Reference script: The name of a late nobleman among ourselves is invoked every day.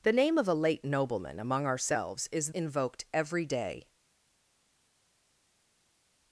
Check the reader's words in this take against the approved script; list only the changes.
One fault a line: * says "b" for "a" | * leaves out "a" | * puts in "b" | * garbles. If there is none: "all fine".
all fine